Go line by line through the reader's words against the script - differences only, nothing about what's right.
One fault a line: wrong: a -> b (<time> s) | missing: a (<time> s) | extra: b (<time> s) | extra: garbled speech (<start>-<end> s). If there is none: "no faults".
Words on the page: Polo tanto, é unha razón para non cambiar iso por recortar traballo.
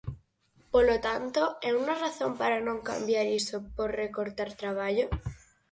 no faults